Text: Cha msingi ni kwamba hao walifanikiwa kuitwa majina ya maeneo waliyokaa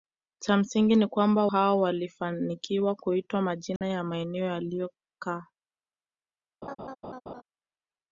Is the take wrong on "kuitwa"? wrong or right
right